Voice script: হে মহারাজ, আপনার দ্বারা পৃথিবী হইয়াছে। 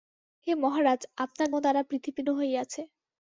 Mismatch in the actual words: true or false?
false